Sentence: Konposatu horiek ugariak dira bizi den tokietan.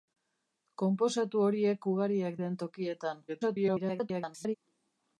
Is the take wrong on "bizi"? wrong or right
wrong